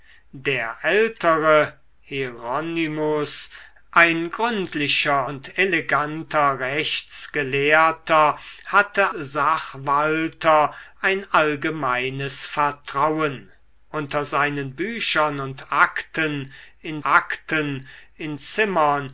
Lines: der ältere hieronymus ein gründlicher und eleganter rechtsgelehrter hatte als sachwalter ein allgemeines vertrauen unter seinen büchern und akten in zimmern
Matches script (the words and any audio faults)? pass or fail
fail